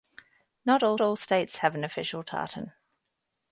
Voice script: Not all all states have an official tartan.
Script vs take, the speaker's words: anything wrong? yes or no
no